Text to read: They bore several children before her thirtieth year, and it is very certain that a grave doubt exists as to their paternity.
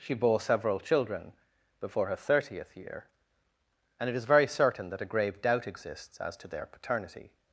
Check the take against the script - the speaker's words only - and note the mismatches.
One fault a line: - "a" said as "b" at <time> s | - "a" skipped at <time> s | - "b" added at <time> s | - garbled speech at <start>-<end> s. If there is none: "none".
- "They" said as "She" at 0.0 s